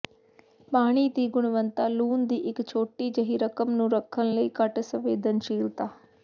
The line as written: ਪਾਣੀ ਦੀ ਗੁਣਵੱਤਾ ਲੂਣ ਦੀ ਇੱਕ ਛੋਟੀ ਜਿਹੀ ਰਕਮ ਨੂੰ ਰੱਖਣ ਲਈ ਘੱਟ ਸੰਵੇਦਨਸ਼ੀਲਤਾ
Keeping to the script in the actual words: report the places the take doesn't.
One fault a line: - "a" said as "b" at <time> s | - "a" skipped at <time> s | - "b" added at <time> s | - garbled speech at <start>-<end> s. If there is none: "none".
none